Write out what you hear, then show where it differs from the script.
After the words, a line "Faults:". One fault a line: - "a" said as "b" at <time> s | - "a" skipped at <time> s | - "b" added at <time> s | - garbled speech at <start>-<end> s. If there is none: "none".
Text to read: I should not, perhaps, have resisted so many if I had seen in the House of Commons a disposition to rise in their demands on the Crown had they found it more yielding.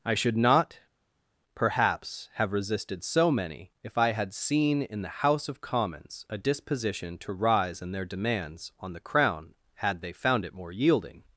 I should not, perhaps, have resisted so many if I had seen in the House of Commons a disposition to rise in their demands on the Crown had they found it more yielding.
Faults:
none